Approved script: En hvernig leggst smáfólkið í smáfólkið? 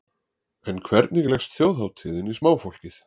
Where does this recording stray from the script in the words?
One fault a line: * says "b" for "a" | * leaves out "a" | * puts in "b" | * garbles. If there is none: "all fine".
* says "þjóðhátíðin" for "smáfólkið"